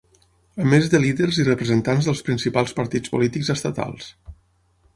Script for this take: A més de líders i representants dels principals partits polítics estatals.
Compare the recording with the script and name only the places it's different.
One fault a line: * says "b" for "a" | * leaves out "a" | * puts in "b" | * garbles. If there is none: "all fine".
all fine